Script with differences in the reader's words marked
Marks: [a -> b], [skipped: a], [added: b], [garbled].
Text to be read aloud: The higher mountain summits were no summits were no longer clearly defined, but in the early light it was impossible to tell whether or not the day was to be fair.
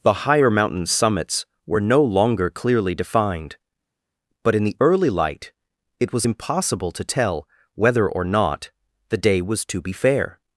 The higher mountain summits were no [skipped: summits were no] longer clearly defined, but in the early light it was impossible to tell whether or not the day was to be fair.